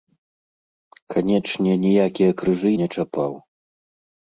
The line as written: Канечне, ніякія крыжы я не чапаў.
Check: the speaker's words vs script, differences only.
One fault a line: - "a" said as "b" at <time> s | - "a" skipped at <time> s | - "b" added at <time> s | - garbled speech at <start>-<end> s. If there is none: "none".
- "я" skipped at 2.7 s